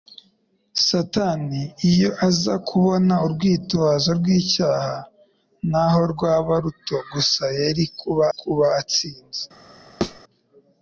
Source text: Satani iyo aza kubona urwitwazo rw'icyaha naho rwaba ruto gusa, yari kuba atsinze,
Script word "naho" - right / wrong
right